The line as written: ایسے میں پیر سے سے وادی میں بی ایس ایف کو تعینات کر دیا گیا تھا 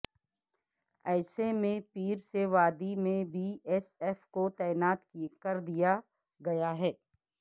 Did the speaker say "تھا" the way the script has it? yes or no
no